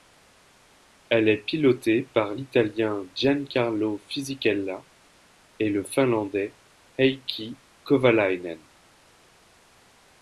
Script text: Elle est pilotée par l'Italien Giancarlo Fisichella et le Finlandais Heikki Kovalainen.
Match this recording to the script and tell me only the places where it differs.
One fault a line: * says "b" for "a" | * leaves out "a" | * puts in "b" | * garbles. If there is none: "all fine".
all fine